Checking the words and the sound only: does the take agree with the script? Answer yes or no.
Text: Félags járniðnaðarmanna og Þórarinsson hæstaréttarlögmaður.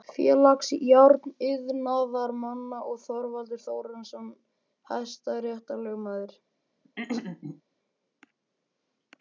no